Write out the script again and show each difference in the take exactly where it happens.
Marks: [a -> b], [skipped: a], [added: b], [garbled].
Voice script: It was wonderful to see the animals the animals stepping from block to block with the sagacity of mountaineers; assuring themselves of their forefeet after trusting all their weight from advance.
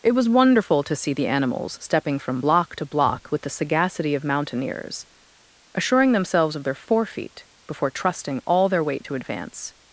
It was wonderful to see the animals [skipped: the animals] stepping from block to block with the sagacity of mountaineers; assuring themselves of their forefeet [after -> before] trusting all their weight [from -> to] advance.